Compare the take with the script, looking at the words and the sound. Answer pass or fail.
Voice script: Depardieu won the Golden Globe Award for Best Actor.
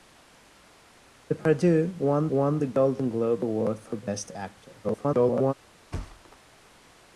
fail